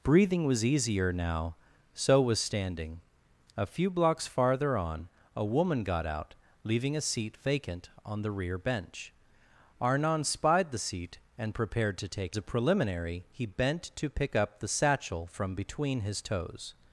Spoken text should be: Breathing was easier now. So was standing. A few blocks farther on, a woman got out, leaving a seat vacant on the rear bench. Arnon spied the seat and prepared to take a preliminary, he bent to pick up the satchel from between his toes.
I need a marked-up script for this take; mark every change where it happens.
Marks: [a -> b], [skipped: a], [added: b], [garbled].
Breathing was easier now. So was standing. A few blocks farther on, a woman got out, leaving a seat vacant on the rear bench. Arnon spied the seat and prepared to take a preliminary, he bent to pick up the satchel from between his toes.